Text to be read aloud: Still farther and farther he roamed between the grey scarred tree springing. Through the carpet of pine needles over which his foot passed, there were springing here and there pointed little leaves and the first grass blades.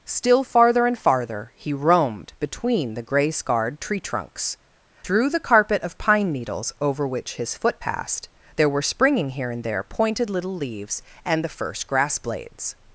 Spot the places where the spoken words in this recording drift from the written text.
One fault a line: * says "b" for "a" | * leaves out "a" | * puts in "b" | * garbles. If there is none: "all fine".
* says "trunks" for "springing"